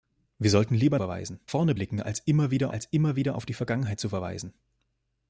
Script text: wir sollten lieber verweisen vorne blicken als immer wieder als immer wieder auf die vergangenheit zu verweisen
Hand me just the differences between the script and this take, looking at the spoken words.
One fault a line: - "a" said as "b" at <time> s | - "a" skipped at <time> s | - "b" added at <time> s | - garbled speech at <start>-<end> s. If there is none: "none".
none